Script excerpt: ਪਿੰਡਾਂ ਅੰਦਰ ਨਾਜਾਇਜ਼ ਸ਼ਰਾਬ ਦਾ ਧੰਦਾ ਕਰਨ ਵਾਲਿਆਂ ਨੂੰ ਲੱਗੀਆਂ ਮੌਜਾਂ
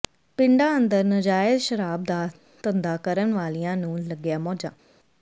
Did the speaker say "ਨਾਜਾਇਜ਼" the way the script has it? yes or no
yes